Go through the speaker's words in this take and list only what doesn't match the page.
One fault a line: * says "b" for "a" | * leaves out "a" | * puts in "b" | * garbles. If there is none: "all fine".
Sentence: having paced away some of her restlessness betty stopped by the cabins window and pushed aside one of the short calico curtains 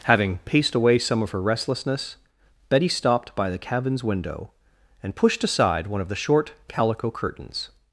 all fine